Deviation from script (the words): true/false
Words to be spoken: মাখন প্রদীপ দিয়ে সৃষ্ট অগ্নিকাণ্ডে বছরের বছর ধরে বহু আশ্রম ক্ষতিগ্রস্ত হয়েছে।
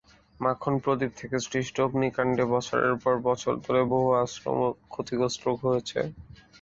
true